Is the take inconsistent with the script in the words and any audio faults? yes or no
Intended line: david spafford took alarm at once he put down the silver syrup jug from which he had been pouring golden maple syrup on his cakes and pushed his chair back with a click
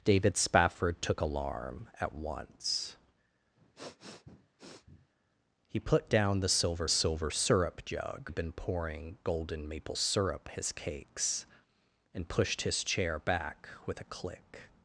yes